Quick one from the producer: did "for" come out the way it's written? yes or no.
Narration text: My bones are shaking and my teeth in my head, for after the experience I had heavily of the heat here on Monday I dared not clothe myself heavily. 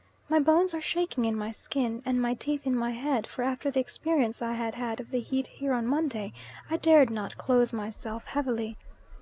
yes